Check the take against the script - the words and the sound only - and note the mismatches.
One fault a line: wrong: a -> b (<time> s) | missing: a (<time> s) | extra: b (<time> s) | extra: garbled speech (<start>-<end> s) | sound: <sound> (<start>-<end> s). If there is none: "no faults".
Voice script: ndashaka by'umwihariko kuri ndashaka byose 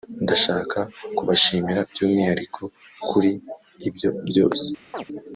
extra: kubashimira (1.2 s)
wrong: ndashaka -> ibyo (3.9 s)
sound: chirp (4.9-5.1 s)